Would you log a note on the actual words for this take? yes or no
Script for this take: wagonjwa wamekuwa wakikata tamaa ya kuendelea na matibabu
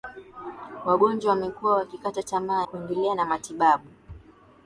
yes